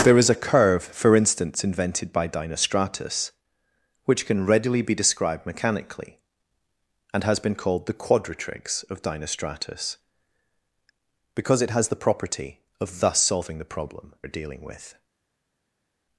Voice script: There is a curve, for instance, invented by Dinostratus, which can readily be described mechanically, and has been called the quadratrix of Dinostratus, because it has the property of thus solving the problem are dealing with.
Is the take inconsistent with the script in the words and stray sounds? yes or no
no